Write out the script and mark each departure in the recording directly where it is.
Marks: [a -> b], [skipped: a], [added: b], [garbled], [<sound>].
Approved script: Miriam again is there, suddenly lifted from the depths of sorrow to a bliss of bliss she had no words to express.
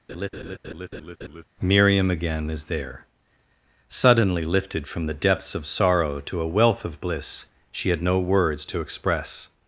[laugh] Miriam again is there, suddenly lifted from the depths of sorrow to a [bliss -> wealth] of bliss she had no words to express.